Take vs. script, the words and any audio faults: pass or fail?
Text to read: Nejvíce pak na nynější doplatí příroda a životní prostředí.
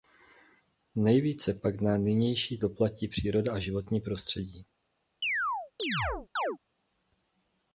fail